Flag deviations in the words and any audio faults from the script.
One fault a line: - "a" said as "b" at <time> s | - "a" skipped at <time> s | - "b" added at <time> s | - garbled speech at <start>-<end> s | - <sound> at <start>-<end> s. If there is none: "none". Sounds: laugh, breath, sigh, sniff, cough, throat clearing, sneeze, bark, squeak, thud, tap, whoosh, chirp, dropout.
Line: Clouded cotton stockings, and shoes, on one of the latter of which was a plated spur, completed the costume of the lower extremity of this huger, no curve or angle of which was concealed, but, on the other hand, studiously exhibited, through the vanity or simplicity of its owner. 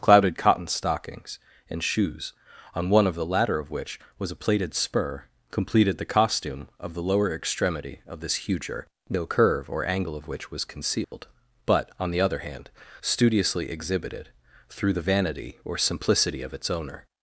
- dropout at 11.0-11.1 s